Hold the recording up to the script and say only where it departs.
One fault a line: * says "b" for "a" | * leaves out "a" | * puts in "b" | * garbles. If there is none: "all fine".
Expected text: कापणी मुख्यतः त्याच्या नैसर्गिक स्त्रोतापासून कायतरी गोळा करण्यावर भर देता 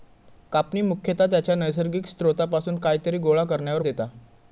* leaves out "भर"